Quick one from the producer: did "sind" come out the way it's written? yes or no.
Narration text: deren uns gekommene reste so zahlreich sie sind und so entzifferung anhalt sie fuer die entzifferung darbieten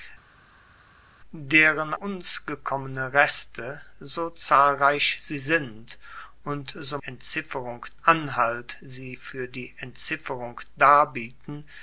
yes